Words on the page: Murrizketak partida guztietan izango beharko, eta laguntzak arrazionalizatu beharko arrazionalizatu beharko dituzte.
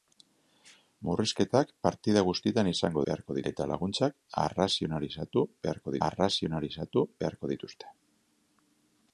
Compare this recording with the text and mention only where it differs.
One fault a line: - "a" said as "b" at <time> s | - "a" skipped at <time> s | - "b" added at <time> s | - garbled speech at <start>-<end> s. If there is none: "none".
none